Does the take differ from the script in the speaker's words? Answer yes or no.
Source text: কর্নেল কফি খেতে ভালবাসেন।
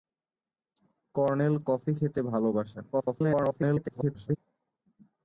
yes